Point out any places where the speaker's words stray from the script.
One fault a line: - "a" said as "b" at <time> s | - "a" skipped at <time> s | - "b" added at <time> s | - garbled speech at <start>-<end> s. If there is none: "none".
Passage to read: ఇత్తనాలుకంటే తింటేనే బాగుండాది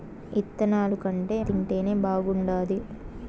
none